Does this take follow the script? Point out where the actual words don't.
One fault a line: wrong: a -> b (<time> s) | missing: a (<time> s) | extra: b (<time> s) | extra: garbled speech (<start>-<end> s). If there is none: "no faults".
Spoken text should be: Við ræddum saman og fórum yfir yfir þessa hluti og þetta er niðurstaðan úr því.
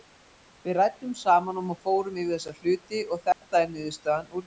missing: yfir (2.4 s)